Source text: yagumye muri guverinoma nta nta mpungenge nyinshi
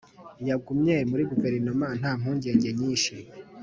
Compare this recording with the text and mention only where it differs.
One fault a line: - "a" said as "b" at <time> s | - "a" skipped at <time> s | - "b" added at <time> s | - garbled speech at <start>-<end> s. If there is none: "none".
- "nta" skipped at 2.1 s